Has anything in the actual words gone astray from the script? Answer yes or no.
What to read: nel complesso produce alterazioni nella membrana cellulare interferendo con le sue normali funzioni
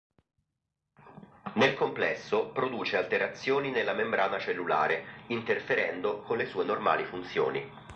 no